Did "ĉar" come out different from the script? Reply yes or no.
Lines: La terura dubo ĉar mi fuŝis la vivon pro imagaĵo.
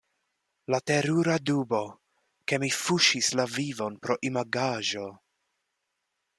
yes